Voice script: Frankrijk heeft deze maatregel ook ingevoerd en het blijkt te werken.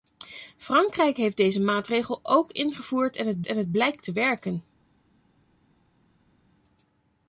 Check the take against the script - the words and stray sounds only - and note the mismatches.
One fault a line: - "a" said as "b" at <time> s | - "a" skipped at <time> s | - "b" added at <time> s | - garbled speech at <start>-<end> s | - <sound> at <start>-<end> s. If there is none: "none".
- "en het" added at 3.5 s